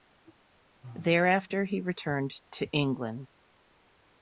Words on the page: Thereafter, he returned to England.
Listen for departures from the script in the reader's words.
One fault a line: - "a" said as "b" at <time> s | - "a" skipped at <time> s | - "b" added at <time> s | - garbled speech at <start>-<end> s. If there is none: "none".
none